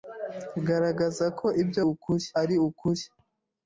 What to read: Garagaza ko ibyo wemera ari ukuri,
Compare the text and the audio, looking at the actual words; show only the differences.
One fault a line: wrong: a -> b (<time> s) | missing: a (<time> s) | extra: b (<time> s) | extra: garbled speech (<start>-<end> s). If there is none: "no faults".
wrong: wemera -> ukuri (1.9 s)